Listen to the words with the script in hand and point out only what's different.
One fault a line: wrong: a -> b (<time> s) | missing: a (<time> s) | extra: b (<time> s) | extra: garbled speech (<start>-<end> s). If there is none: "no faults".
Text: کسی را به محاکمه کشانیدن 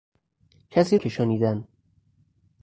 missing: را به محاکمه (1.0 s)